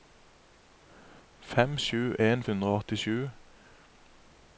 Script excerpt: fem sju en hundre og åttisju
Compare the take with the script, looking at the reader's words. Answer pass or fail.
pass